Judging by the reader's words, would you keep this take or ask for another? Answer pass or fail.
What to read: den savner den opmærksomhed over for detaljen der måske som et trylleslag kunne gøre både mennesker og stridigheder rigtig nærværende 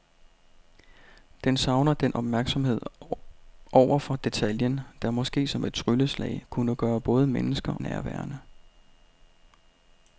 fail